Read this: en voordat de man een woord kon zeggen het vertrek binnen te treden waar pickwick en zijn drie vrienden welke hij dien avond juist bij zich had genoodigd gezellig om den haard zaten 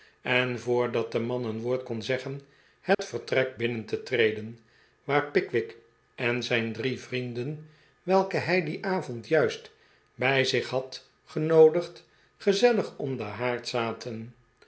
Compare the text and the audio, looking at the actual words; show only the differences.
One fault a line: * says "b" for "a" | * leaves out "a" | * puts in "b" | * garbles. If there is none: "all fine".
all fine